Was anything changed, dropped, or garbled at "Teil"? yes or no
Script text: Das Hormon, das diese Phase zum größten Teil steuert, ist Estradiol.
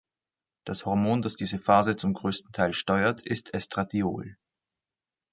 no